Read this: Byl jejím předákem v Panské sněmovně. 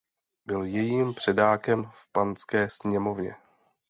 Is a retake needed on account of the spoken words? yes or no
no